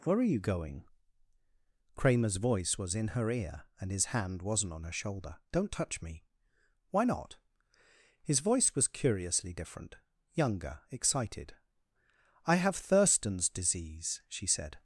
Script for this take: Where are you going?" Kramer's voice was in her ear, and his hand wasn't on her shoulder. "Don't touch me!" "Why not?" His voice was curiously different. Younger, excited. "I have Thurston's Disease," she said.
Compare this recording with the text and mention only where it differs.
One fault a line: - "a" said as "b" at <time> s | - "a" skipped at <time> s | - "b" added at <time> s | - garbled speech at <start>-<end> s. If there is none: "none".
none